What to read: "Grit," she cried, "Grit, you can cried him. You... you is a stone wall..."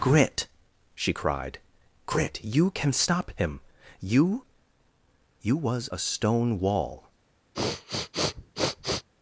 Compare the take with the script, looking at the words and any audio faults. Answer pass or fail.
fail